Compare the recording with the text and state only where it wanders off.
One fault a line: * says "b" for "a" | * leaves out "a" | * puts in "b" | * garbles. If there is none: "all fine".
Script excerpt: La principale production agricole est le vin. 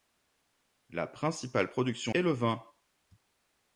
* leaves out "agricole"